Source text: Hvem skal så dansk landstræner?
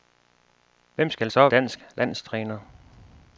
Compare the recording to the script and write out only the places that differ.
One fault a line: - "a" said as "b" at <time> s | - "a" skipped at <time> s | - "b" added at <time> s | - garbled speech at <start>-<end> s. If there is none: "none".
none